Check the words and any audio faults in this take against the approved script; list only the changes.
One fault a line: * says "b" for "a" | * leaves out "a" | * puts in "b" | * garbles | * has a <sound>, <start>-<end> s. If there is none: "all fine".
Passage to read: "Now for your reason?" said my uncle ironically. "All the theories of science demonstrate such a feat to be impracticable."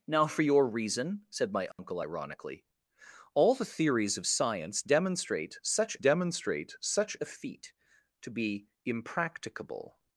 * has a dropout, 1.7-1.8 s
* puts in "demonstrate such"